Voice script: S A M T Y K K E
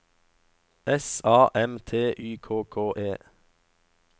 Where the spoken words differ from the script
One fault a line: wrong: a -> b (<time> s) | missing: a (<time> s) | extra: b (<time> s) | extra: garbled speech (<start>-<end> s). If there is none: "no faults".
no faults